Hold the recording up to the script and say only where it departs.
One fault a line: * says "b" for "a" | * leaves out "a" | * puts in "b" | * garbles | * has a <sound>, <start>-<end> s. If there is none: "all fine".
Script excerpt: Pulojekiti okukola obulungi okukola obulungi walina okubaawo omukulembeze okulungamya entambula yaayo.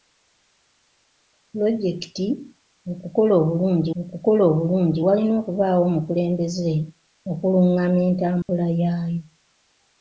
* has a dropout, 8.4-8.5 s